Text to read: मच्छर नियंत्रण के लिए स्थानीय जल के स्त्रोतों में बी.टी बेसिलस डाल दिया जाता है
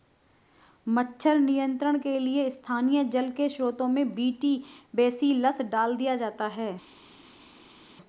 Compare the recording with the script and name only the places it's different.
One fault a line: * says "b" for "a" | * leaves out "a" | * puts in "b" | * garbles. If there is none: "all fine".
all fine